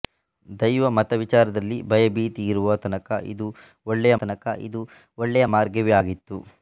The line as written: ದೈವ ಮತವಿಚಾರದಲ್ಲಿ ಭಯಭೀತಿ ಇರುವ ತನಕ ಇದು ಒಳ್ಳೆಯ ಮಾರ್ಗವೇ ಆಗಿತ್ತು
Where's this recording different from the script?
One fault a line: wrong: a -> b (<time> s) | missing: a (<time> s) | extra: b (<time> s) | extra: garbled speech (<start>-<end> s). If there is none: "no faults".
extra: ತನಕ ಇದು ಒಳ್ಳೆಯ (4.1 s)